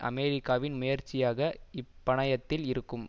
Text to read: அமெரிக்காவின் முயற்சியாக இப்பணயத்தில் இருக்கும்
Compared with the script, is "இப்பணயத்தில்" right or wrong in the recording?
right